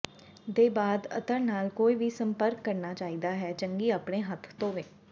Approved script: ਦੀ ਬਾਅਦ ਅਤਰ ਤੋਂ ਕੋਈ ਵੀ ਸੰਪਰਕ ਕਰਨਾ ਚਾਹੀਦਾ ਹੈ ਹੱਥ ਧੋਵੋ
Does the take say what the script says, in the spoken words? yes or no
no